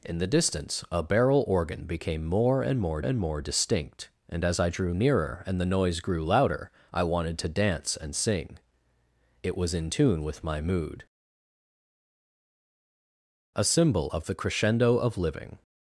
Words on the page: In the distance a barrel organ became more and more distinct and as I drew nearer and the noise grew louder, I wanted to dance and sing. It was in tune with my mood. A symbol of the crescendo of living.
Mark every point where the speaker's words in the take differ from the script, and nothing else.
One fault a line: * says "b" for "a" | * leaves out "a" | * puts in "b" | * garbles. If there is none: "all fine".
* puts in "and more"